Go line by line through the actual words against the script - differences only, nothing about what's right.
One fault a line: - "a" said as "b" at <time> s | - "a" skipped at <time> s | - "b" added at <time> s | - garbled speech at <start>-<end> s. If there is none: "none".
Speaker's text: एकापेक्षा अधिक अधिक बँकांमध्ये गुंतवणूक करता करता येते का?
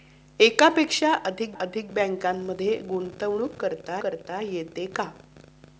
none